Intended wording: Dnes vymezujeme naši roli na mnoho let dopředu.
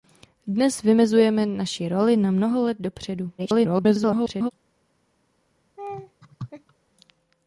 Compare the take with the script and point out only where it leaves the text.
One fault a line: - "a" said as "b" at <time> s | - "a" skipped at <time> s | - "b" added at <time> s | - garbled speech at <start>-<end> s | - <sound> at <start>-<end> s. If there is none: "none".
- garbled speech at 3.4-4.5 s
- laugh at 5.8-6.7 s